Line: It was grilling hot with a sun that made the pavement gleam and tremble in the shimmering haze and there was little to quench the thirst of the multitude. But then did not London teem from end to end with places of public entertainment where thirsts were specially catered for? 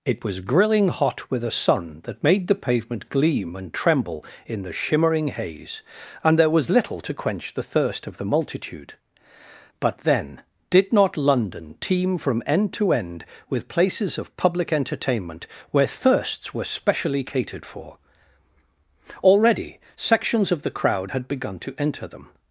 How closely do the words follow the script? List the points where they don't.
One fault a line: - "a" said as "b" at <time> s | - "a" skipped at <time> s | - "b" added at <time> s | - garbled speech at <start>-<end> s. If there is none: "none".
- "Already sections of the crowd had begun to enter them" added at 19.2 s